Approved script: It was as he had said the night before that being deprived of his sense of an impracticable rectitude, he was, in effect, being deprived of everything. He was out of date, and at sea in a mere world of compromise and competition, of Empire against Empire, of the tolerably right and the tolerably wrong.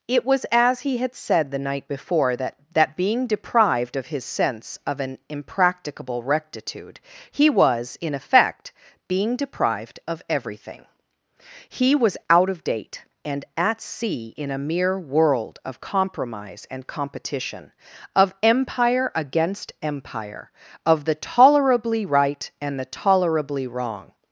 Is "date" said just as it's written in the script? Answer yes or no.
yes